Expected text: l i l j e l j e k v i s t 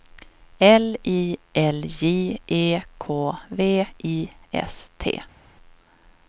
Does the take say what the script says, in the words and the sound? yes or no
no